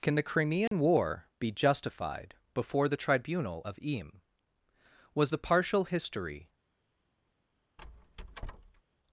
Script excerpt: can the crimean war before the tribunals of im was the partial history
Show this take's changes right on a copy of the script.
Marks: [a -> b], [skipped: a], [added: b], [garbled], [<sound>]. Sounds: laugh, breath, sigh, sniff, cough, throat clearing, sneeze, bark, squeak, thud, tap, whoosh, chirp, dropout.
can the crimean [dropout] war [added: be justified] before the [tribunals -> tribunal] of im was the partial history [squeak]